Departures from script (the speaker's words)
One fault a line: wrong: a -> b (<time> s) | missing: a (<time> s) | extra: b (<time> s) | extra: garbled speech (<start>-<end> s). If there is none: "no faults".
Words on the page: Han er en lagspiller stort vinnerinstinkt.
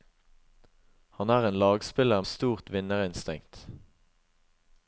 no faults